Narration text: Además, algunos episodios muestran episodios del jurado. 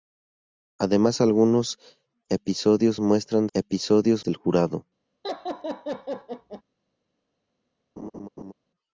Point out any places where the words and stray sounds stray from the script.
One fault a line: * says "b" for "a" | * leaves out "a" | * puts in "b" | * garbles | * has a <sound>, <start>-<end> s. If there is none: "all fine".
* has a laugh, 5.2-6.6 s
* has a laugh, 8.0-8.5 s